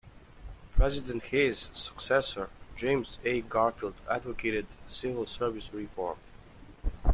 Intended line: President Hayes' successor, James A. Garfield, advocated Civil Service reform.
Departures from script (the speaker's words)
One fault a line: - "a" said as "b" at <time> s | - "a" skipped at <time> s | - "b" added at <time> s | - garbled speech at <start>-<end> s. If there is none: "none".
none